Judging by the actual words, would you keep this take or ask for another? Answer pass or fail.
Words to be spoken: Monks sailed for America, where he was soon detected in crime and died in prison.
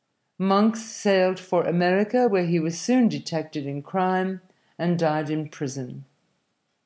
pass